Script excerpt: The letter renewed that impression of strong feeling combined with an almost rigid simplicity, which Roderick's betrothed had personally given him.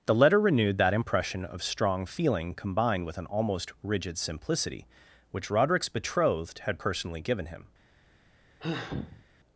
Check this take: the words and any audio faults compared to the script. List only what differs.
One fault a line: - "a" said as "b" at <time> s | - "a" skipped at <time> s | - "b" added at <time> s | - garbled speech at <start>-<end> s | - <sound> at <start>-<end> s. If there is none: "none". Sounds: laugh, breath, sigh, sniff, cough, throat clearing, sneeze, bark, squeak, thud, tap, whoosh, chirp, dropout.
- sigh at 8.6-9.3 s